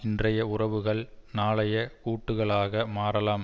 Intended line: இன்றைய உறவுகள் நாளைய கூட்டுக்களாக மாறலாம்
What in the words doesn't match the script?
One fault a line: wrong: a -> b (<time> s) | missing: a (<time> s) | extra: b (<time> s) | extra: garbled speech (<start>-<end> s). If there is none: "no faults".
no faults